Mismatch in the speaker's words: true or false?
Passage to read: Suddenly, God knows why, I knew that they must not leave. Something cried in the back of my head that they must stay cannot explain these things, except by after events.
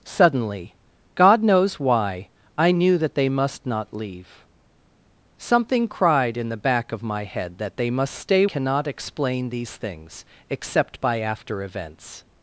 false